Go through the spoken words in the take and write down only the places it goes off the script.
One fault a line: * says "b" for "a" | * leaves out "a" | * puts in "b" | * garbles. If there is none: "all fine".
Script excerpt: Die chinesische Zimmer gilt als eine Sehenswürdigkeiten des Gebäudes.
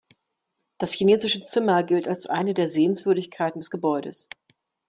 * says "Das" for "Die"
* puts in "der"